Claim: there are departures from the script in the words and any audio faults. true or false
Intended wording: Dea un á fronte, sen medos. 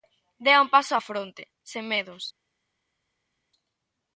true